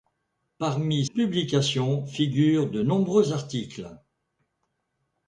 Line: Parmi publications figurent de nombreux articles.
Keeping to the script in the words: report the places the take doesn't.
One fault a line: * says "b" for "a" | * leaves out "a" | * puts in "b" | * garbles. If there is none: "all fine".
all fine